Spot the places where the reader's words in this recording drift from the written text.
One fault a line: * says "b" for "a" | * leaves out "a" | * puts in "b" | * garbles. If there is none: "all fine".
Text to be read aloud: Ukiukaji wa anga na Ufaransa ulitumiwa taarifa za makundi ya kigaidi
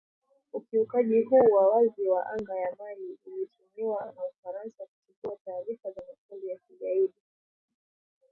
* puts in "huu"
* puts in "wazi wa"
* puts in "ya Mali ulitumiwa"
* says "kuchukua" for "ulitumiwa"